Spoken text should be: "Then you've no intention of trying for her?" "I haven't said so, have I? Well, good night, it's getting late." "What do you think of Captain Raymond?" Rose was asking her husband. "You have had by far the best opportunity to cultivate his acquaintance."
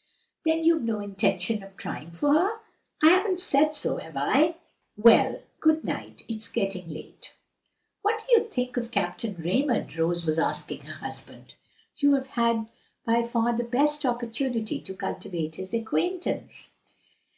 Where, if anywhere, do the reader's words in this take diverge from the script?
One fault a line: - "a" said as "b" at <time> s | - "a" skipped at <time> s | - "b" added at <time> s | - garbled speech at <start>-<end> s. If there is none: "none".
none